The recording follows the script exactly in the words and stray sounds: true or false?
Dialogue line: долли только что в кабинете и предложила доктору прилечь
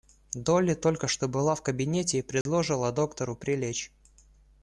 false